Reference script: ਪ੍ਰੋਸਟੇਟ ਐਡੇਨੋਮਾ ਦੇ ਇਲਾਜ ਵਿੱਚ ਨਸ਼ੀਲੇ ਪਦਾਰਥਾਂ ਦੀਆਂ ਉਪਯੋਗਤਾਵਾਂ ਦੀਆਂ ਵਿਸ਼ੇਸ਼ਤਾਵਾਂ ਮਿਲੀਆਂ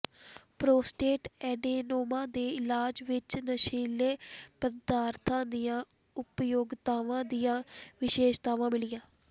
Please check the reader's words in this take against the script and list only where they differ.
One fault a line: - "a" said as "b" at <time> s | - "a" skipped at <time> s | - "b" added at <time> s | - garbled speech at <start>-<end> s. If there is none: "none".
none